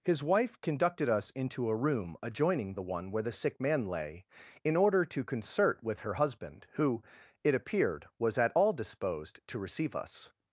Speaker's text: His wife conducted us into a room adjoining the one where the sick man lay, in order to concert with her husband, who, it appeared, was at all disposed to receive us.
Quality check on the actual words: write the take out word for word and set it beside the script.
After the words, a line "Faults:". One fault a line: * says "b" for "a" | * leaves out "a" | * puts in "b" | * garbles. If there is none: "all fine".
His wife conducted us into a room adjoining the one where the sick man lay, in order to concert with her husband, who, it appeared, was at all disposed to receive us.
Faults:
all fine